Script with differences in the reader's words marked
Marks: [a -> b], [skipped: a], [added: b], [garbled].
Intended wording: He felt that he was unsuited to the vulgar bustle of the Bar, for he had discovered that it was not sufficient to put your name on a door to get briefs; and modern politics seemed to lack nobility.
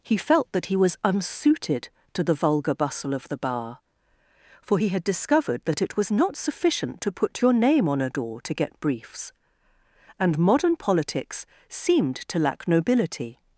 He felt that he was unsuited to the vulgar bustle of the Bar, for he had discovered that it was not sufficient to put your name on a door to get briefs; and modern politics seemed to lack nobility.